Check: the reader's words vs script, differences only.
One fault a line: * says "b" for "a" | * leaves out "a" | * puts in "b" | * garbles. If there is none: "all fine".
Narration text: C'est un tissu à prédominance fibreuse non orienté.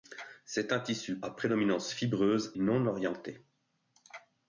all fine